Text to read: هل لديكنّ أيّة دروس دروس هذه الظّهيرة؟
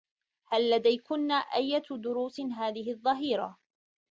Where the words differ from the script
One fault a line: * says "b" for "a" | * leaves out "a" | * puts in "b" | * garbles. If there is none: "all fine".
* leaves out "دروس"